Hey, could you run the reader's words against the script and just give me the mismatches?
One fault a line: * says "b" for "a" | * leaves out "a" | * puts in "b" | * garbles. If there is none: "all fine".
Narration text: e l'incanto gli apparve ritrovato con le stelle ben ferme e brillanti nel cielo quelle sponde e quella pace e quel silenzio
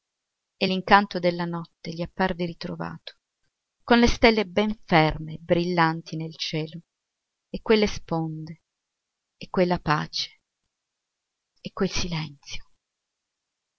* puts in "della notte"
* puts in "e"